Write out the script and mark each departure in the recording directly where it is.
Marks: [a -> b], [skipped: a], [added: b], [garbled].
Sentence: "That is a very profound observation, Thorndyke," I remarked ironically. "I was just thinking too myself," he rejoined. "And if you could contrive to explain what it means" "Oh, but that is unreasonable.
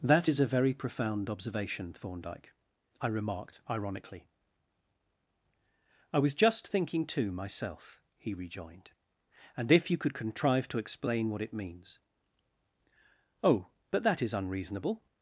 "That is a very profound observation, Thorndyke," I remarked ironically. "I was just thinking too myself," he rejoined. "And if you could contrive to explain what it means" "Oh, but that is unreasonable.